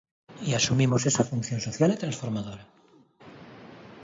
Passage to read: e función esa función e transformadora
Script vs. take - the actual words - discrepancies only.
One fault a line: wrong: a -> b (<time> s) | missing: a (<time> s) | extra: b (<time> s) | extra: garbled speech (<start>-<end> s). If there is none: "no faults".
wrong: función -> asumimos (0.6 s)
extra: social (1.6 s)